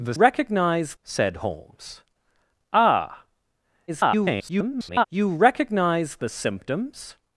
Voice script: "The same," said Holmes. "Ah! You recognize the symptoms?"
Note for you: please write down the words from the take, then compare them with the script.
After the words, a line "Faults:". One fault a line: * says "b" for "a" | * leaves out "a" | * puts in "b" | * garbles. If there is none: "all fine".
"The recognize," said Holmes. "Ah! [garbled] You recognize the symptoms?"
Faults:
* says "recognize" for "same"
* garbles